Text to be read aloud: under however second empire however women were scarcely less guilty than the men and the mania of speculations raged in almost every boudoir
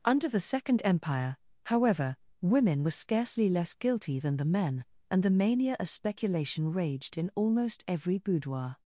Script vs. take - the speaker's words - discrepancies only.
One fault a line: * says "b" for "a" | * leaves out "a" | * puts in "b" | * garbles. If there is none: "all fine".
* says "the" for "however"
* says "speculation" for "speculations"